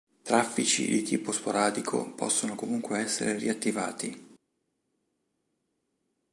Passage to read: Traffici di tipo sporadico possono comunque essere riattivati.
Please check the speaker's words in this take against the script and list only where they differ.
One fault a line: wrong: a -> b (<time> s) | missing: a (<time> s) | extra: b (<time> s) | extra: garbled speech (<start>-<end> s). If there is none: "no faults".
no faults